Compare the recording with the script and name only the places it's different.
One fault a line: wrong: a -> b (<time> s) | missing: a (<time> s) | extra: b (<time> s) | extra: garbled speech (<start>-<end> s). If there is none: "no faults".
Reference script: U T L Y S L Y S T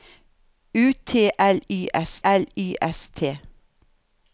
no faults